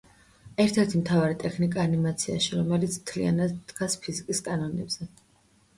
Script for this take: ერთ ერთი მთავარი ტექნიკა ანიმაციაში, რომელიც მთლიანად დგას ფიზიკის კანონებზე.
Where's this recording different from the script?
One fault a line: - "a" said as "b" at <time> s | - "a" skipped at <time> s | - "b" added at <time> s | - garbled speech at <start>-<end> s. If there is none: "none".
none